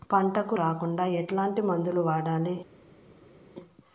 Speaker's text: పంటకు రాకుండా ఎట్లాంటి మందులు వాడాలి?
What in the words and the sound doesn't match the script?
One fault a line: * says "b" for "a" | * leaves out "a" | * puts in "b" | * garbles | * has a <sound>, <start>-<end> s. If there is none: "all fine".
all fine